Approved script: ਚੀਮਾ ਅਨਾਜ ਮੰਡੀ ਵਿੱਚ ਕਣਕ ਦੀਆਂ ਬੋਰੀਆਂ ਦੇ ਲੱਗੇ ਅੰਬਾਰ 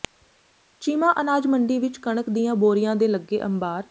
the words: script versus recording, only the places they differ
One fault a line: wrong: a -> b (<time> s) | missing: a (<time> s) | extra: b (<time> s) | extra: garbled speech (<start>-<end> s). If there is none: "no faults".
no faults